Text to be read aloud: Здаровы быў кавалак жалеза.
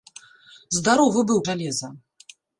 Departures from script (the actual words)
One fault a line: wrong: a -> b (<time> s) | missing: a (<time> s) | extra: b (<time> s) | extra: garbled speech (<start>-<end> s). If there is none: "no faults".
missing: кавалак (1.4 s)